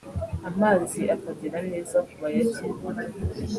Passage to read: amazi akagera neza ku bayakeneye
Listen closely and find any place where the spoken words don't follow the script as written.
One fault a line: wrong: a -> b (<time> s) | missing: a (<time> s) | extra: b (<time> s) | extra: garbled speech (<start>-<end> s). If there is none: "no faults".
no faults